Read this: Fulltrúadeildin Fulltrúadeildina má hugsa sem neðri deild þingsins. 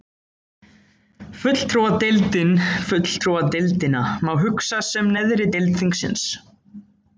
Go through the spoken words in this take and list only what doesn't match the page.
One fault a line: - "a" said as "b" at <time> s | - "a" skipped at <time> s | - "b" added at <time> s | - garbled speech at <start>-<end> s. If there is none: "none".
none